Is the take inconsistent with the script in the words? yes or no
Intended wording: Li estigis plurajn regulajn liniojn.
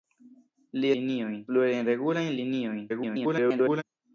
yes